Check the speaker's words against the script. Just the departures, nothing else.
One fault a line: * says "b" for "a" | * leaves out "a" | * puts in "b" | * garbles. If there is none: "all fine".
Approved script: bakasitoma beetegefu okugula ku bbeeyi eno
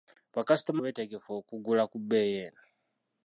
all fine